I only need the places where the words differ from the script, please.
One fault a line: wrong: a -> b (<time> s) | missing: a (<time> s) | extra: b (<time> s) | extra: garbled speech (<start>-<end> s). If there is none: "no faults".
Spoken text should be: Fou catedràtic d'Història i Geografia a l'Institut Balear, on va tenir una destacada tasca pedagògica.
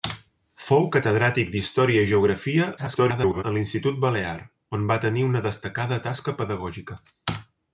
extra: garbled speech (2.8-3.4 s)